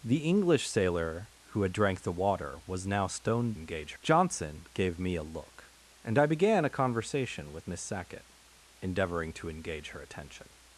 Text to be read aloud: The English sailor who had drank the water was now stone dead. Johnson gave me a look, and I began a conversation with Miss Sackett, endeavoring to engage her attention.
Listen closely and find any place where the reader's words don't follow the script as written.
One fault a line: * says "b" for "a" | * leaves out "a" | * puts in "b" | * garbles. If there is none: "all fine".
* says "engage" for "dead"